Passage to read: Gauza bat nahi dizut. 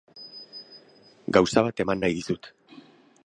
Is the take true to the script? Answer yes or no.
no